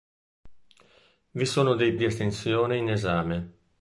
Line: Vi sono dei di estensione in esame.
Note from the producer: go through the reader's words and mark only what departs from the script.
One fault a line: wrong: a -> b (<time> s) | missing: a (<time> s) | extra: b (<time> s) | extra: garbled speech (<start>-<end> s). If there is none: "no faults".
no faults